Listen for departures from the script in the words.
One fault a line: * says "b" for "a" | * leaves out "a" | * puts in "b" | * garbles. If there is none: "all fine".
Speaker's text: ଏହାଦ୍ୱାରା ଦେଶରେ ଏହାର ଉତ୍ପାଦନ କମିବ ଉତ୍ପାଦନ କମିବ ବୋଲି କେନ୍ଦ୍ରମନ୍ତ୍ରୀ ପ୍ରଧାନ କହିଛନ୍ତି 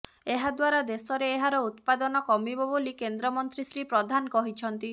* leaves out "ଉତ୍ପାଦନ କମିବ"
* puts in "ଶ୍ରୀ"